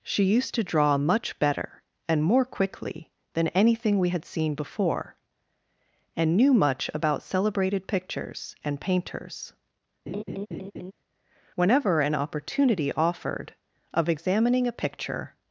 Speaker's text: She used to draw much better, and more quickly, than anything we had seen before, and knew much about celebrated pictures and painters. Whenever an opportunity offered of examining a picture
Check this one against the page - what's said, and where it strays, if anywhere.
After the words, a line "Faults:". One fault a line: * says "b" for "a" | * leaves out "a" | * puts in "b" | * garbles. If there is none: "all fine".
She used to draw much better, and more quickly, than anything we had seen before, and knew much about celebrated pictures and painters. Whenever an opportunity offered of examining a picture
Faults:
all fine